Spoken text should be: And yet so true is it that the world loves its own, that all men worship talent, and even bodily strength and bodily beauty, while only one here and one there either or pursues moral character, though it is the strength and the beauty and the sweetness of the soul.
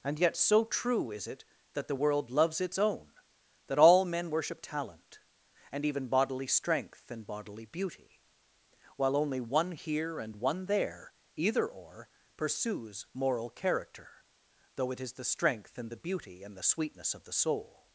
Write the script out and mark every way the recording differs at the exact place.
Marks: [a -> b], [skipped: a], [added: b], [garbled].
And yet so true is it that the world loves its own, that all men worship talent, and even bodily strength and bodily beauty, while only one here and one there either or pursues moral character, though it is the strength and the beauty and the sweetness of the soul.